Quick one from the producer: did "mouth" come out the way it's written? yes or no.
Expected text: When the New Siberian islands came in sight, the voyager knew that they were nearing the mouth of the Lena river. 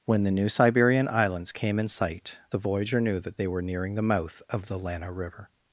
yes